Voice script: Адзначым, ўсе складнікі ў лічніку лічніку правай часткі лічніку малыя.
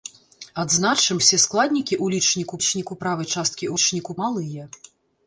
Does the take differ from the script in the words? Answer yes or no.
no